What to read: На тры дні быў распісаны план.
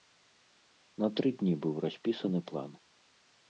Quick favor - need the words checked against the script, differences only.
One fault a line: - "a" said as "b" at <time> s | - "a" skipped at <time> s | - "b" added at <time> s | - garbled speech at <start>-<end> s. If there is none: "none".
none